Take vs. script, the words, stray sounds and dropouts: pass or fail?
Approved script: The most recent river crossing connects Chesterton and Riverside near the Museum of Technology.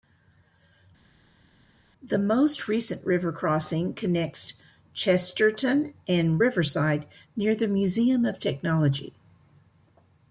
pass